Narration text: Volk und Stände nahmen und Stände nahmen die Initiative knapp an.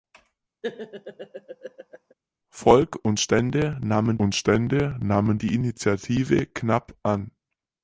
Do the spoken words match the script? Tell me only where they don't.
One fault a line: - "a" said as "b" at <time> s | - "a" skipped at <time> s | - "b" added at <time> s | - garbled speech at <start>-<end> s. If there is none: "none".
none